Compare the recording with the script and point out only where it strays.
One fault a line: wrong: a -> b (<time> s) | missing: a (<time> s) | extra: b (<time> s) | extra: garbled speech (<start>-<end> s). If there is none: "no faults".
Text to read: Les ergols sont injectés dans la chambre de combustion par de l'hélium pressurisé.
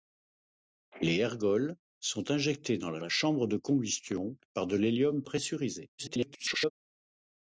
extra: la (3.0 s)
extra: garbled speech (6.0-6.7 s)